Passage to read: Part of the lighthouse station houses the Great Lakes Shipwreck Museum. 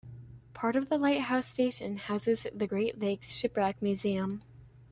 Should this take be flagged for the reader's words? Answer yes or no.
no